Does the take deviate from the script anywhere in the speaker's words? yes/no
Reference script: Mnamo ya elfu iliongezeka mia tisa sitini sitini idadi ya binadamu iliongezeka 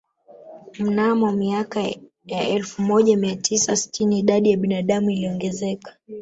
yes